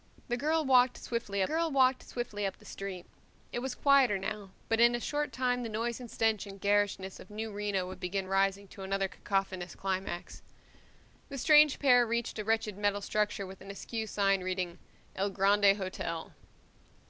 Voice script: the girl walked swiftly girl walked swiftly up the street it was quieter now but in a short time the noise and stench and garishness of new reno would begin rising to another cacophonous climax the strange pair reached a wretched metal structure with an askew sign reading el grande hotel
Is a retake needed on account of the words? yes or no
no